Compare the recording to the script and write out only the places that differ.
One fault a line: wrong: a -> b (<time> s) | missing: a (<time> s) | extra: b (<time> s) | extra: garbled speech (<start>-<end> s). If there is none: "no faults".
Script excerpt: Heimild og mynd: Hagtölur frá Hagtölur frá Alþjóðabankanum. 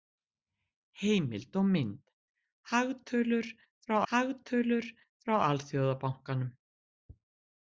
no faults